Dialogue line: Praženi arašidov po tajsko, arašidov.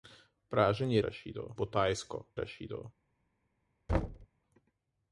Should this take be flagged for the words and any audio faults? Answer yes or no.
yes